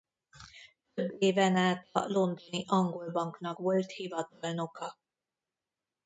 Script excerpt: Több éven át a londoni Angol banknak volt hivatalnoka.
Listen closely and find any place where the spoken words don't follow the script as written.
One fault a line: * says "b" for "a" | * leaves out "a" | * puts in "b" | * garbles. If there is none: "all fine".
all fine